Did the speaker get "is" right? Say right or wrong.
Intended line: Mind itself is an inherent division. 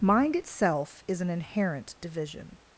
right